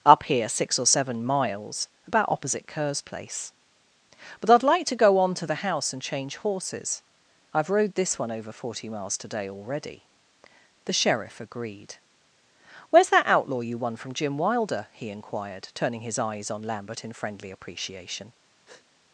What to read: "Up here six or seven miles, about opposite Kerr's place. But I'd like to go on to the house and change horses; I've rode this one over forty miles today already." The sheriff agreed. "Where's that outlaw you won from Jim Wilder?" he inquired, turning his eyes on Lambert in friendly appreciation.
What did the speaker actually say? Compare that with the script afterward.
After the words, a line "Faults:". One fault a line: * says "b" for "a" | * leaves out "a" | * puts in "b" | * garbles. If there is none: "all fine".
"Up here six or seven miles, about opposite Kerr's place. But I'd like to go on to the house and change horses; I've rode this one over forty miles today already." The sheriff agreed. "Where's that outlaw you won from Jim Wilder?" he inquired, turning his eyes on Lambert in friendly appreciation.
Faults:
all fine